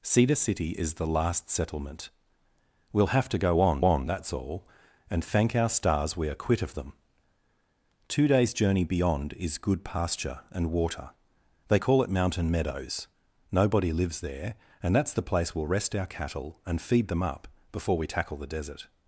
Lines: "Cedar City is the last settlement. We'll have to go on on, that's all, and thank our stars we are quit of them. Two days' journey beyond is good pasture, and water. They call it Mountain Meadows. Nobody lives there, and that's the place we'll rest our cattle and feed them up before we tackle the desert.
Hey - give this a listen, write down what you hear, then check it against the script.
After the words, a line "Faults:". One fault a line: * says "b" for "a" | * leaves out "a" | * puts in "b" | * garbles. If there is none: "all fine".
"Cedar City is the last settlement. We'll have to go on on, that's all, and thank our stars we are quit of them. Two days' journey beyond is good pasture, and water. They call it Mountain Meadows. Nobody lives there, and that's the place we'll rest our cattle and feed them up before we tackle the desert.
Faults:
all fine